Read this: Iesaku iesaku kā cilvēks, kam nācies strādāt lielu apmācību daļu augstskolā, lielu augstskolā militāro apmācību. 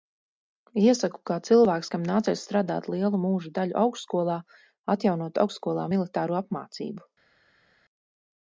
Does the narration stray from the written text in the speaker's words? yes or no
yes